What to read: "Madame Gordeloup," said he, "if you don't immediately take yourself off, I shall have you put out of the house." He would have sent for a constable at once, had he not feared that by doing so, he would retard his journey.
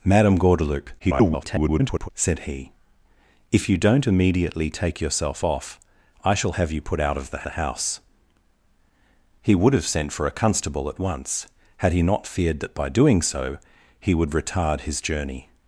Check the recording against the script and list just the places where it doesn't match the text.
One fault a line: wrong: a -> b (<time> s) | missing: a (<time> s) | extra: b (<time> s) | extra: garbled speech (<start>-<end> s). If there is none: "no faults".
extra: garbled speech (1.0-2.1 s)
extra: the (7.4 s)